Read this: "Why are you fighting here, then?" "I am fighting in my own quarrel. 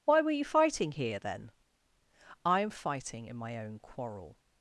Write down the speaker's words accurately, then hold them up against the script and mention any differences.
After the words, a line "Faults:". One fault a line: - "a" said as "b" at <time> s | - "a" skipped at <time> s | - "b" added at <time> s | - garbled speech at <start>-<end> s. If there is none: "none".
"Why were you fighting here, then?" "I am fighting in my own quarrel.
Faults:
- "are" said as "were" at 0.2 s